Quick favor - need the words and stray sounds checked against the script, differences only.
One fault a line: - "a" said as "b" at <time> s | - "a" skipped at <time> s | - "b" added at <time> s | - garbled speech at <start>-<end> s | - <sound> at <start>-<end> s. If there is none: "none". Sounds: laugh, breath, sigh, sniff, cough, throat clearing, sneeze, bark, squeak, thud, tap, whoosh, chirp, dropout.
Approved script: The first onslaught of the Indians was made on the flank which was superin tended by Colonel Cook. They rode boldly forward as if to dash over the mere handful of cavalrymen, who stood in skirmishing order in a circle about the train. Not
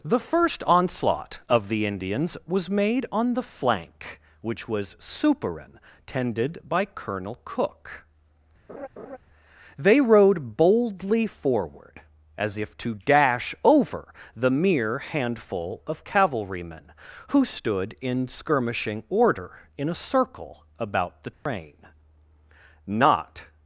- laugh at 8.7-9.2 s
- dropout at 21.3-21.5 s